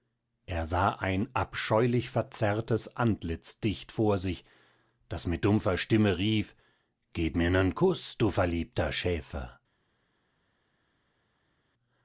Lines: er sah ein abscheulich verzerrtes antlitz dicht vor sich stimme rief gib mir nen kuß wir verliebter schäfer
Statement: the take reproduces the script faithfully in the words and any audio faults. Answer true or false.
false